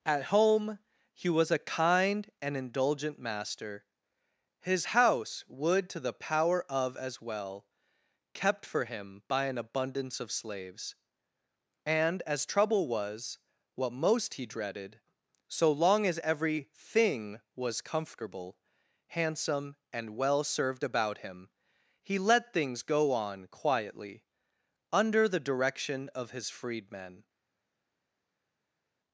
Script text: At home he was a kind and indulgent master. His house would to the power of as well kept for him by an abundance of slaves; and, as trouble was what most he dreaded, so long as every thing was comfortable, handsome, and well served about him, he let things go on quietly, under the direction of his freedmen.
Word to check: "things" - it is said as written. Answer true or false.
true